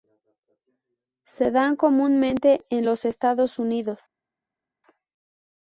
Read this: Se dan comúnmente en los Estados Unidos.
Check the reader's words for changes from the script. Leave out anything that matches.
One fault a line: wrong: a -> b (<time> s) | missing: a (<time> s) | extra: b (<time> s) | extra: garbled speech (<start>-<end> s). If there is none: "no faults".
no faults